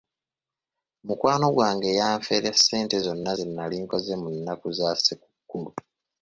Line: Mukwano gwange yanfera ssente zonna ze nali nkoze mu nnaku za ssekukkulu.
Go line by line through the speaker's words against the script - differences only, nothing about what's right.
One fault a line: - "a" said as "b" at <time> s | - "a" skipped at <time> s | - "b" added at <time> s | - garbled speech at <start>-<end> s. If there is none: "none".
none